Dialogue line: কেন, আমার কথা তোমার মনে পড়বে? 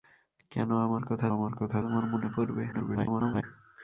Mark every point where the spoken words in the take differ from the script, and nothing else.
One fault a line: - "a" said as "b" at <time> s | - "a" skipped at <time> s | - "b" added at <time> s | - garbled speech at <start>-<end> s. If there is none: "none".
- "আমার কথা" added at 1.3 s
- garbled speech at 2.7-3.4 s